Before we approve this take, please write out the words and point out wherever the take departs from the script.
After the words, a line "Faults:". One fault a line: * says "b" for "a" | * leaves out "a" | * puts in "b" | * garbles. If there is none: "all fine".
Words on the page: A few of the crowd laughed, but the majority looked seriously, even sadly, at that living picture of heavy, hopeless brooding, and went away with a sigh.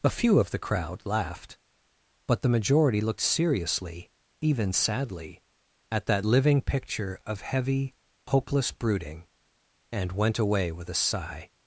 A few of the crowd laughed, but the majority looked seriously, even sadly, at that living picture of heavy, hopeless brooding, and went away with a sigh.
Faults:
all fine